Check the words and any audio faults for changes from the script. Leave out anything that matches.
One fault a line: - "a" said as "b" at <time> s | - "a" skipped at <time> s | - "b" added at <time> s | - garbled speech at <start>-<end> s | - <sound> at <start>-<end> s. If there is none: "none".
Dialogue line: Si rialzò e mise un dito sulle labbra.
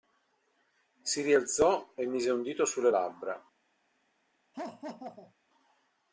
- laugh at 4.5-5.3 s